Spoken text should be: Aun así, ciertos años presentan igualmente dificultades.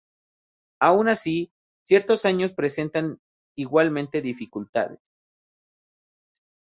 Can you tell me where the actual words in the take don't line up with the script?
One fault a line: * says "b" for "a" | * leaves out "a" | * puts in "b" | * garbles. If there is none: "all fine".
all fine